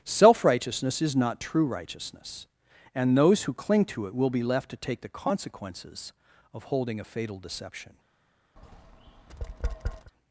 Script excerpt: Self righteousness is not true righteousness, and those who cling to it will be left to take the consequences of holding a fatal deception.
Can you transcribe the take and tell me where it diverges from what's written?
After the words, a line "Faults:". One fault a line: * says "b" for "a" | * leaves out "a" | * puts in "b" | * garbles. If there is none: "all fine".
Self righteousness is not true righteousness, and those who cling to it will be left to take the consequences of holding a fatal deception.
Faults:
all fine